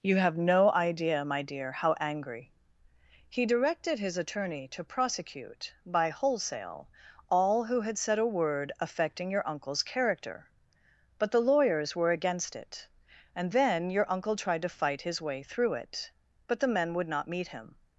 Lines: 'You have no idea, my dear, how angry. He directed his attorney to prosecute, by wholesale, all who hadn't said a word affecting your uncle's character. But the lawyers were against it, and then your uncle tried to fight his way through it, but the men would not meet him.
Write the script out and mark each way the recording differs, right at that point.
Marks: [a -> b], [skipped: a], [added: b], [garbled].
'You have no idea, my dear, how angry. He directed his attorney to prosecute, by wholesale, all who [hadn't -> had] said a word affecting your uncle's character. But the lawyers were against it, and then your uncle tried to fight his way through it, but the men would not meet him.